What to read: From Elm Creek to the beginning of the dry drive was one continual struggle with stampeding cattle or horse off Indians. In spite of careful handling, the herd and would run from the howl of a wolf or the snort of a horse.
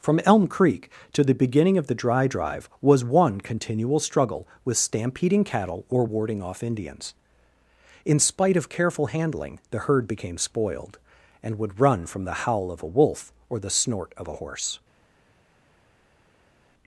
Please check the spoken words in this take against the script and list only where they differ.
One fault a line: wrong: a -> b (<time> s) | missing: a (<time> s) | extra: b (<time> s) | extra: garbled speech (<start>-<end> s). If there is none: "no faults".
wrong: horse -> warding (6.0 s)
extra: became spoiled (10.1 s)